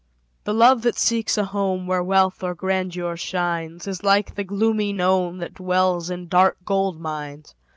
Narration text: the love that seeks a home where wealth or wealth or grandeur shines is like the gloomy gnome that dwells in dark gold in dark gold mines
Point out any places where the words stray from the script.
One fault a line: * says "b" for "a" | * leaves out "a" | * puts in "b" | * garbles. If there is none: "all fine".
* leaves out "wealth or"
* leaves out "in dark gold"